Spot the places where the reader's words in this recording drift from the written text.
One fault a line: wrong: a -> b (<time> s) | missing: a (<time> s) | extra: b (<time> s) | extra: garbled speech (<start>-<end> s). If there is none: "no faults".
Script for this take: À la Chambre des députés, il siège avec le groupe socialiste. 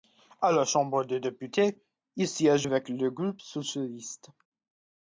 no faults